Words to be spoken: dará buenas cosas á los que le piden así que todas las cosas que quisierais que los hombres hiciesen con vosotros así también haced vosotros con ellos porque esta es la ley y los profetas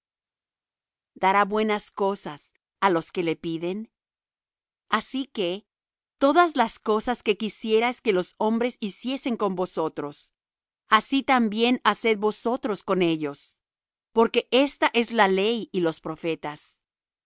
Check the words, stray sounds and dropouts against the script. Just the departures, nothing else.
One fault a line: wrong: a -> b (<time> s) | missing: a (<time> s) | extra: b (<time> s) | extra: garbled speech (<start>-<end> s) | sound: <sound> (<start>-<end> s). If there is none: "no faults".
no faults